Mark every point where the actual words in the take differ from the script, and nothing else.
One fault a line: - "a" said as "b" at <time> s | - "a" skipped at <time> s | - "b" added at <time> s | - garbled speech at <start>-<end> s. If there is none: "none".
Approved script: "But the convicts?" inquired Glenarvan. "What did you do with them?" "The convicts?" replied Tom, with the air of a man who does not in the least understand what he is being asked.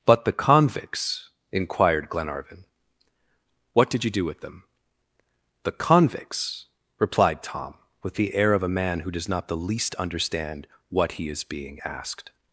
- "in" skipped at 9.5 s